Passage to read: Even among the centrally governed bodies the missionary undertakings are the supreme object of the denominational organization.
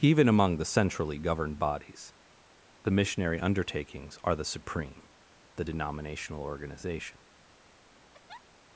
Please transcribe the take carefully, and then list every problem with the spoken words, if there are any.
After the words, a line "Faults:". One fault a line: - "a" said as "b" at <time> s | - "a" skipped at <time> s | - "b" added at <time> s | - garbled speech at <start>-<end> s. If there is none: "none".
Even among the centrally governed bodies the missionary undertakings are the supreme the denominational organization.
Faults:
- "object of" skipped at 5.1 s